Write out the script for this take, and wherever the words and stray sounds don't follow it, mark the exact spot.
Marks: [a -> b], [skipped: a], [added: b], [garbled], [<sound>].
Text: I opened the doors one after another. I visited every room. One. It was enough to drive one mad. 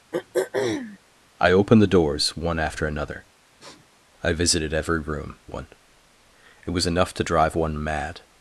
[throat clearing] I opened the doors one after another. [sniff] I visited every room. One. It was enough to drive one mad.